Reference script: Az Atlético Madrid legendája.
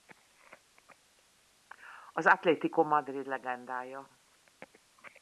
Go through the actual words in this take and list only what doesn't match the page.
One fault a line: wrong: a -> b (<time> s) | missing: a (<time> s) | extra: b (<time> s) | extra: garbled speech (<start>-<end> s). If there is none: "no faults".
no faults